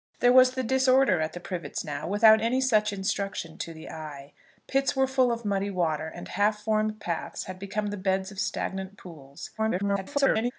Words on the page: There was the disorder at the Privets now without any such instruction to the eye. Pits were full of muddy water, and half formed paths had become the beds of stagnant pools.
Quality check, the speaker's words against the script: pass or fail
fail